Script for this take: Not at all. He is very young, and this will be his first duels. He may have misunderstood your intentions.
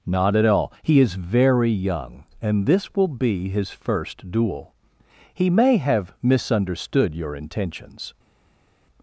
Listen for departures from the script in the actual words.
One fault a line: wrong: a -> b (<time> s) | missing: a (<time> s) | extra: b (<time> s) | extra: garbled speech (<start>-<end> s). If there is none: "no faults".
wrong: duels -> duel (4.3 s)